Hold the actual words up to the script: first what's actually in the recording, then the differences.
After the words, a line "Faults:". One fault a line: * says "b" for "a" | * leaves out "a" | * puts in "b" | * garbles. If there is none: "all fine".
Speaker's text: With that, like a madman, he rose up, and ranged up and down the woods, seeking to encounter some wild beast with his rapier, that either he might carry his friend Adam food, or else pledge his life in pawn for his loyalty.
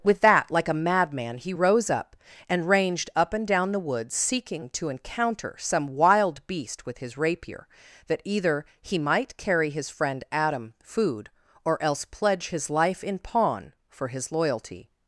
With that, like a madman, he rose up, and ranged up and down the woods, seeking to encounter some wild beast with his rapier, that either he might carry his friend Adam food, or else pledge his life in pawn for his loyalty.
Faults:
all fine